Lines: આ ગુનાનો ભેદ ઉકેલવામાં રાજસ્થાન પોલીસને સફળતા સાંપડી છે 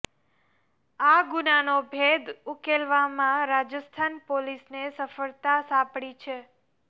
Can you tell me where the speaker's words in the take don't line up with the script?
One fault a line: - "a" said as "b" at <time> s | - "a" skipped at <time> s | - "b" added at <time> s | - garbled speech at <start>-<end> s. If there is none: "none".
none